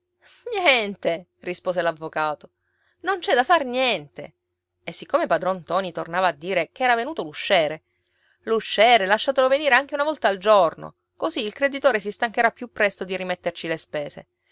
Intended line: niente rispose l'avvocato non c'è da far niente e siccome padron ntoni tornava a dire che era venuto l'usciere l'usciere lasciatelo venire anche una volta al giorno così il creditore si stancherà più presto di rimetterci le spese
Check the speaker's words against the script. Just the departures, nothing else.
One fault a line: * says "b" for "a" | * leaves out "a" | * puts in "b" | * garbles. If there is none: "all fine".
all fine